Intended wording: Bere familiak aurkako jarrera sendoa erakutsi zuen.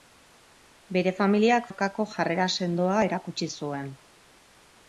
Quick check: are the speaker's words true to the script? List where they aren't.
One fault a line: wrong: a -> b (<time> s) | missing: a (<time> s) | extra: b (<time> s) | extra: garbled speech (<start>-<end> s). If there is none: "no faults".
no faults